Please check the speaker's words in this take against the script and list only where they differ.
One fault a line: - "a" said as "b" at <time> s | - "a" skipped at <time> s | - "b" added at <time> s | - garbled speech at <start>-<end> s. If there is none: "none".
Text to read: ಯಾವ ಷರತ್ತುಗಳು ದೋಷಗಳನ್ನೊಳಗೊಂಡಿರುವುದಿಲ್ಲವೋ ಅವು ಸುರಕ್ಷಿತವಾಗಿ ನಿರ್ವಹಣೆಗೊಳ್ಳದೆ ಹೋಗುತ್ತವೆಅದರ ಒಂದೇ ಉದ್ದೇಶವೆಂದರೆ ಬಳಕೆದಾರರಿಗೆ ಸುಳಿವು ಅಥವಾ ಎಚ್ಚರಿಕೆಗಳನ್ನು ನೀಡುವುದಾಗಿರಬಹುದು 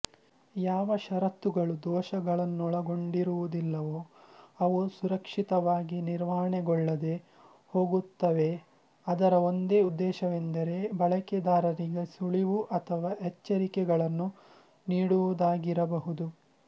none